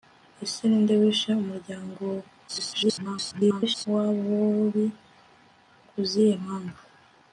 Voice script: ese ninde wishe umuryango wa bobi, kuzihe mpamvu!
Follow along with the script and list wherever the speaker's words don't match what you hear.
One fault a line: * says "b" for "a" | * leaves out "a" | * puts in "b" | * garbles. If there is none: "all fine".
* garbles